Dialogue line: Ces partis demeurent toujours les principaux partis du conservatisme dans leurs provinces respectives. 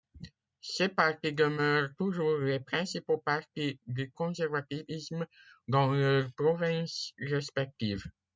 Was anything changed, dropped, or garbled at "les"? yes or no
no